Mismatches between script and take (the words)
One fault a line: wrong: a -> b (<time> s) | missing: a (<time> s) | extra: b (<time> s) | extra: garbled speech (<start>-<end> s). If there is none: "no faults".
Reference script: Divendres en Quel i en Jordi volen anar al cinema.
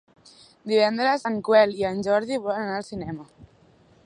no faults